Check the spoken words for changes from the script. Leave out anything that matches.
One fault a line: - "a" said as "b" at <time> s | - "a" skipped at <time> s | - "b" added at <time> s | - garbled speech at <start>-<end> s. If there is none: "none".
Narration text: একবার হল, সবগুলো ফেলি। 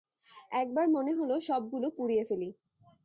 - "মনে" added at 0.9 s
- "পুড়িয়ে" added at 2.0 s